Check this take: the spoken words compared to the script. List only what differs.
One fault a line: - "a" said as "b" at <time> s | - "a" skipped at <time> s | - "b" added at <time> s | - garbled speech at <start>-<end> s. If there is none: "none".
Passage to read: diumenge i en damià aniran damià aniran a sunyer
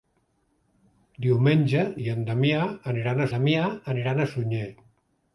none